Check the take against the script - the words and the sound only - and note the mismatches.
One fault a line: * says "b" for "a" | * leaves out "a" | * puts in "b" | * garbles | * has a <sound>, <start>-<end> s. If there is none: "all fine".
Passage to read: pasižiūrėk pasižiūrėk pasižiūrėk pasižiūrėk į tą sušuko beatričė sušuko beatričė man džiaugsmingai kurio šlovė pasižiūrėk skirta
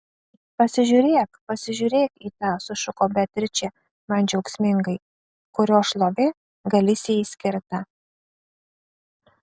* leaves out "pasižiūrėk pasižiūrėk"
* leaves out "sušuko beatričė"
* says "galisijai" for "pasižiūrėk"